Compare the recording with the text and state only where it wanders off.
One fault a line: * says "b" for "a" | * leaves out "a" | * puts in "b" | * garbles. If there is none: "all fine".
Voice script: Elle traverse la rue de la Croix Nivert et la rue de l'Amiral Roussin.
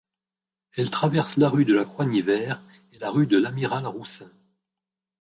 all fine